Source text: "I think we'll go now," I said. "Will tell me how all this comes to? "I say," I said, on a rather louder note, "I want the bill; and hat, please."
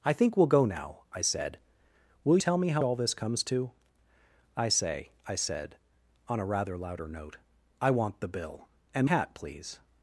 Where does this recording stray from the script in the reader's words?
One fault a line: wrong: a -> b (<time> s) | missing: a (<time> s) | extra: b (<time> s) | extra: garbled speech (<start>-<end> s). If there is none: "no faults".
no faults